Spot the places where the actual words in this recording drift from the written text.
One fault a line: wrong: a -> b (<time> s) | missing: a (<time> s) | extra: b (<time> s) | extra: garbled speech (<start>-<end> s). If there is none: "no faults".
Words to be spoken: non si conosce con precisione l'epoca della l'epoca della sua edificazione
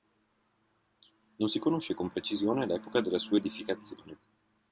missing: l'epoca della (3.2 s)